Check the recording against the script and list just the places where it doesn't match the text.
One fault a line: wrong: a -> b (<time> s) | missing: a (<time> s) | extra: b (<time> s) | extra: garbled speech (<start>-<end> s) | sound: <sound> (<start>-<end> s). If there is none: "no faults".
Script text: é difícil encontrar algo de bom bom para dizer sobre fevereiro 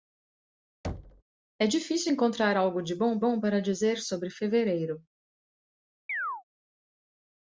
sound: thud (0.8-1.2 s)
sound: chirp (6.1-6.4 s)